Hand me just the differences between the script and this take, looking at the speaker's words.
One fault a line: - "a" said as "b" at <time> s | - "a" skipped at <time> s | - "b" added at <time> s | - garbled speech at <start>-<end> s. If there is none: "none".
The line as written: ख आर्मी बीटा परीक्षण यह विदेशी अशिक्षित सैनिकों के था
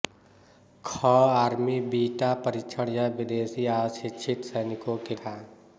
none